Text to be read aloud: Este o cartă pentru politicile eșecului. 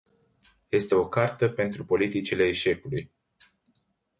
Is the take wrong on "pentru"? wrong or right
right